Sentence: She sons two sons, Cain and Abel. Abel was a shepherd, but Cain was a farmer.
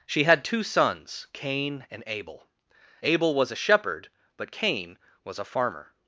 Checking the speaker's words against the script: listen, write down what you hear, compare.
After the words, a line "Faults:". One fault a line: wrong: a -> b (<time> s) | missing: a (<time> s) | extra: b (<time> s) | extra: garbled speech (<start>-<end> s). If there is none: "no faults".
She had two sons, Cain and Abel. Abel was a shepherd, but Cain was a farmer.
Faults:
wrong: sons -> had (0.2 s)